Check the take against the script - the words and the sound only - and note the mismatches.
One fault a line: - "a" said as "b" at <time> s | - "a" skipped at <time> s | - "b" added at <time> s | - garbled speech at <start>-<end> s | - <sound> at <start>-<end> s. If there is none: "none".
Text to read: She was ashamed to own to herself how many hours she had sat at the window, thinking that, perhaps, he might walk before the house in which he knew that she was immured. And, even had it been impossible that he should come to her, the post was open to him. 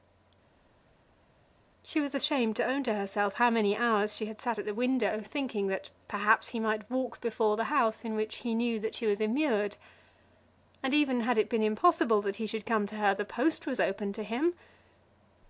none